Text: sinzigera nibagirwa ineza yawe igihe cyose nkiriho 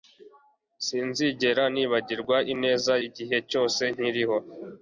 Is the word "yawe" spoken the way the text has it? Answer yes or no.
no